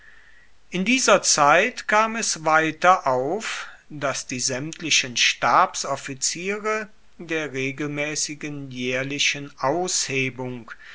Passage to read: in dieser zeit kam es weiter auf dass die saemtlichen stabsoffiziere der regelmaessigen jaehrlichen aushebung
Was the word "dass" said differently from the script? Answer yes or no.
no